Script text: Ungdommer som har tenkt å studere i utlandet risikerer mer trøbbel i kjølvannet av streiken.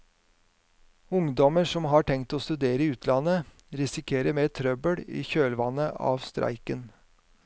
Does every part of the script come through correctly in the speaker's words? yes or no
yes